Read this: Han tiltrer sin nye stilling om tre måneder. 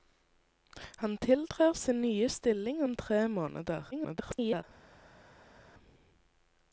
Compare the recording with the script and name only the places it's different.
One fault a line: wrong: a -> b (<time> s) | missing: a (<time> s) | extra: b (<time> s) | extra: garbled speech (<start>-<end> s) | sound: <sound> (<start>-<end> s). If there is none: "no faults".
extra: garbled speech (3.9-4.6 s)